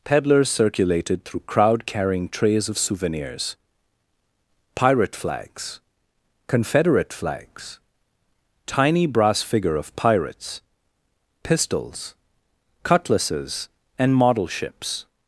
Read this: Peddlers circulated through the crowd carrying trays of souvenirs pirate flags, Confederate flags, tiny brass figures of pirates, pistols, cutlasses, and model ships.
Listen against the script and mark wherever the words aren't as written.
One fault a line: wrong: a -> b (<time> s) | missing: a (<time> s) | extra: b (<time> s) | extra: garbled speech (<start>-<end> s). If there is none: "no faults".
missing: the (1.4 s)
wrong: figures -> figure (9.4 s)